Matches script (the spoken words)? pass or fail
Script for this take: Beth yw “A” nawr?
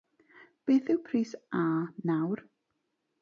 fail